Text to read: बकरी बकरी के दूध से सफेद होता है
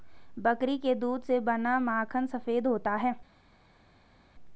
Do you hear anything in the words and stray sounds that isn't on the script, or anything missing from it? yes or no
yes